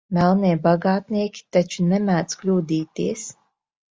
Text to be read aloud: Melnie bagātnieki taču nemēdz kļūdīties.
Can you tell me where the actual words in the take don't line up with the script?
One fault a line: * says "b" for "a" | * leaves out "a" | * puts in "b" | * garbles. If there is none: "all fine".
all fine